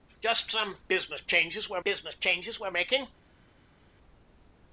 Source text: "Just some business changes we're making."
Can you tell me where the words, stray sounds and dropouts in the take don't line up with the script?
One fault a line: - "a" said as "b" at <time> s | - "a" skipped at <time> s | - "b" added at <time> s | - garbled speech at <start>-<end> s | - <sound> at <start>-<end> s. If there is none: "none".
- "business changes we're" added at 1.8 s